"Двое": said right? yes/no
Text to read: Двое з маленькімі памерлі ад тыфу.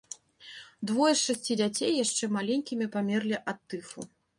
yes